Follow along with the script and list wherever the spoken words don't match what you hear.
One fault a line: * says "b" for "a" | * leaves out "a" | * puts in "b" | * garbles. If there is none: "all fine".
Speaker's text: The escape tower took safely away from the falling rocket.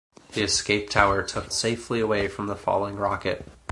all fine